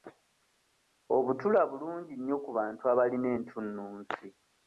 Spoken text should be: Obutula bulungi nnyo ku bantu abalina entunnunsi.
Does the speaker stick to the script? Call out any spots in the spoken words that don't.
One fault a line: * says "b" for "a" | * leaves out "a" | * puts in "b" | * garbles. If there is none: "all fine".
all fine